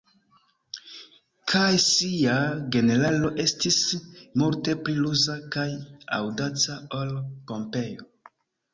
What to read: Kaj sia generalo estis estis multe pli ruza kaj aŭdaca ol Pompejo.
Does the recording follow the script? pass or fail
fail